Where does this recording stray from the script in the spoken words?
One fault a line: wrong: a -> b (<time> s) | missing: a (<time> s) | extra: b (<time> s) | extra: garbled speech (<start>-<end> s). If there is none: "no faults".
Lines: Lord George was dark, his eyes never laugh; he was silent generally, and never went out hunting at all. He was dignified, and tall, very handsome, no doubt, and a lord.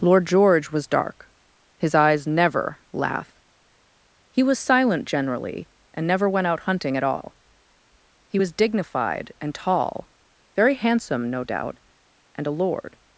no faults